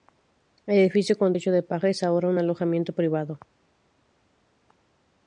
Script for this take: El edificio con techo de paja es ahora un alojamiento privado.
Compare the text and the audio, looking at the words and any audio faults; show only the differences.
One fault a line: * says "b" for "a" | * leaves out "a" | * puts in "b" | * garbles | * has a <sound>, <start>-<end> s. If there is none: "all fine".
all fine